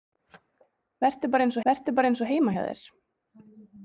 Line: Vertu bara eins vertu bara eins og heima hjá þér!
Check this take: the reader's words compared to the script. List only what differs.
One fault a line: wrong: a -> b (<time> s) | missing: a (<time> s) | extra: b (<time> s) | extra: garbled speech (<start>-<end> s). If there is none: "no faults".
no faults